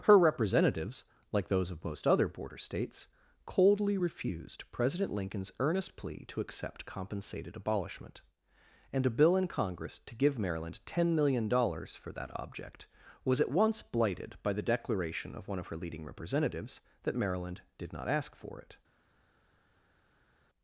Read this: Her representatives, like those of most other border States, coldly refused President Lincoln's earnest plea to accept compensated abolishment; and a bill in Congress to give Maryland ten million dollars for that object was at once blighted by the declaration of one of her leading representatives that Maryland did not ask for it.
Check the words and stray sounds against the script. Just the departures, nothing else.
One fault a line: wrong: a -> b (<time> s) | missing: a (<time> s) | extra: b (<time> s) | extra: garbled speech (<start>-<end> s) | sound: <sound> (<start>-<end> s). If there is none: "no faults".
no faults